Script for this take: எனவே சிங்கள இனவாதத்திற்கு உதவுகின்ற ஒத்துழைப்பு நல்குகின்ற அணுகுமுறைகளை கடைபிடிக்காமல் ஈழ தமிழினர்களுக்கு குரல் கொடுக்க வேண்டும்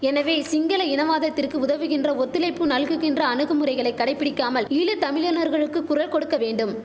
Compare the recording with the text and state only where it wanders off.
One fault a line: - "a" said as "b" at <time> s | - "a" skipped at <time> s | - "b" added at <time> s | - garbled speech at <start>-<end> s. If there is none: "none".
none